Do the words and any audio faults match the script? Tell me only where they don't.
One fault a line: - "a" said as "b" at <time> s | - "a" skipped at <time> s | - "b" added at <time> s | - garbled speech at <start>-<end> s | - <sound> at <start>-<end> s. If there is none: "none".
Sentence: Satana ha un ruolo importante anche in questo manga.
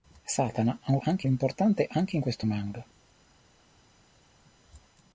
- "ruolo" said as "anche" at 1.0 s